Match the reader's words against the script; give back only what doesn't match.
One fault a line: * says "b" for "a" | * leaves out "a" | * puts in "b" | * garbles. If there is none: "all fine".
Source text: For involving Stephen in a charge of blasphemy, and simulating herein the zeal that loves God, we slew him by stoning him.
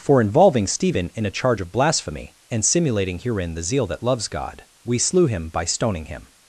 all fine